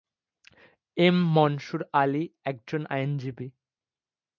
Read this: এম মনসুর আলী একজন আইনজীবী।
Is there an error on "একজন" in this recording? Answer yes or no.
no